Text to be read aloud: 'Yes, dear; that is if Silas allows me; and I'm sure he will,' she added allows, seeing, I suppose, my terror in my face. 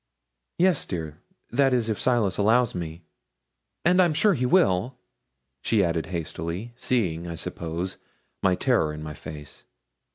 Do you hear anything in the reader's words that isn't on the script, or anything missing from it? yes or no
yes